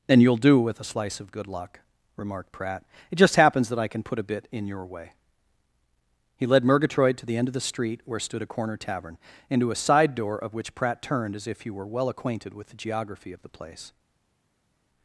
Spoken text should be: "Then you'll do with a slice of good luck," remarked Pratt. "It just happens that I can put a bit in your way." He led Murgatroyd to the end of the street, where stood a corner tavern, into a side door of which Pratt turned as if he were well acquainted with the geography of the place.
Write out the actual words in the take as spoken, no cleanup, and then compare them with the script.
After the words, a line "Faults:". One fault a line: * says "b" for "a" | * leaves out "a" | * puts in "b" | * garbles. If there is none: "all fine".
"And you'll do with a slice of good luck," remarked Pratt. "It just happens that I can put a bit in your way." He led Murgatroyd to the end of the street, where stood a corner tavern, into a side door of which Pratt turned as if he were well acquainted with the geography of the place.
Faults:
* says "And" for "Then"